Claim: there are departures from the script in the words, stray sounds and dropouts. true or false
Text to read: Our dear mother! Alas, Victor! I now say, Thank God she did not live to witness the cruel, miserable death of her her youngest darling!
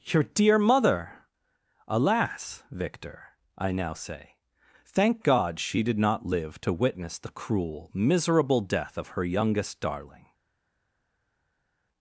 true